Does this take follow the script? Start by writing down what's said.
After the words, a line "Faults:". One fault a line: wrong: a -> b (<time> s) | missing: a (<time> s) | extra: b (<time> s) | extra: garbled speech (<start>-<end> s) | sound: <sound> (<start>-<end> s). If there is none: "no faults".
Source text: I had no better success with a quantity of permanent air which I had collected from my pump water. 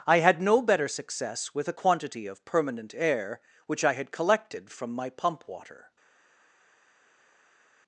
I had no better success with a quantity of permanent air which I had collected from my pump water.
Faults:
no faults